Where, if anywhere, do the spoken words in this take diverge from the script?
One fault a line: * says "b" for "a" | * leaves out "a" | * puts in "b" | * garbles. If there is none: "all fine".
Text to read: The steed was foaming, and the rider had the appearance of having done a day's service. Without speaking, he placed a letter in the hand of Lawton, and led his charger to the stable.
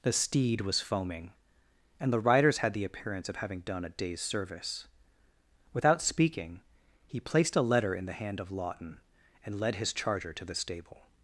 * says "riders" for "rider"